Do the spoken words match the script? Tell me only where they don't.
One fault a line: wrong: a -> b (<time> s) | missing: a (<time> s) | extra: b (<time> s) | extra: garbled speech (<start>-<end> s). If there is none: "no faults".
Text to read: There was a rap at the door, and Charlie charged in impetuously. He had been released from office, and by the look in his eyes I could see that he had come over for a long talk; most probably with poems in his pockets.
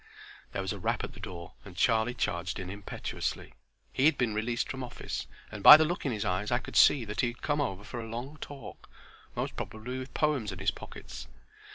no faults